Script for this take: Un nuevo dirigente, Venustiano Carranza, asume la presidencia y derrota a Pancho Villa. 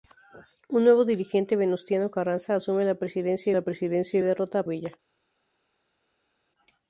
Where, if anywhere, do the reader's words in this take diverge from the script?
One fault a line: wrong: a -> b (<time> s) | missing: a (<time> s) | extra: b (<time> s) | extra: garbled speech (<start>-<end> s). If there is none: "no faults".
extra: la presidencia (3.5 s)
missing: Pancho (4.6 s)